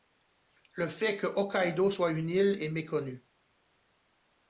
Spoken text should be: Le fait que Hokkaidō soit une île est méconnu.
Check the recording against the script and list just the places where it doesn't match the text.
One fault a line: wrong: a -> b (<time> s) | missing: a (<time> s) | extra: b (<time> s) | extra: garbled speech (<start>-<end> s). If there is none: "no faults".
no faults